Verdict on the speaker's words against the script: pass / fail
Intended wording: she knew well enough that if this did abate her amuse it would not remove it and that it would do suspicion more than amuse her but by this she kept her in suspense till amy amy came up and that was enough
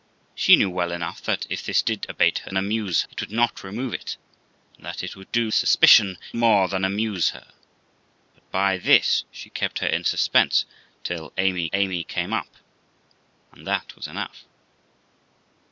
pass